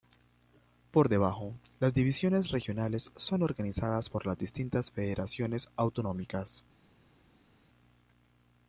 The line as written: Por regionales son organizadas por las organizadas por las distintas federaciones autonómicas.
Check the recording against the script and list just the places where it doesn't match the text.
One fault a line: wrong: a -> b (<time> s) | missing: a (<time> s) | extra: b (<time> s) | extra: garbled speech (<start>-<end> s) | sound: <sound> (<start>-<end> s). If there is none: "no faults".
wrong: regionales son organizadas por las -> debajo las divisiones regionales son (1.1 s)